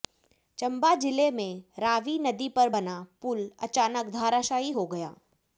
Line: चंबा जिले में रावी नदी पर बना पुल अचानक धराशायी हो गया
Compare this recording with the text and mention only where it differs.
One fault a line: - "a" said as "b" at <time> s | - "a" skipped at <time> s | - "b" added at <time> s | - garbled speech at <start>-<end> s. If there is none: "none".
none